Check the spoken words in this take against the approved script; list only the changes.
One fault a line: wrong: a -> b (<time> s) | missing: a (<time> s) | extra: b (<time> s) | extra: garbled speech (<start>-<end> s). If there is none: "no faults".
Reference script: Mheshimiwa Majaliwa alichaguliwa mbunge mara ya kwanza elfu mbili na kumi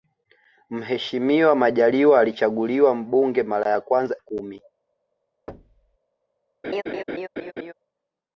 missing: elfu mbili na (4.2 s)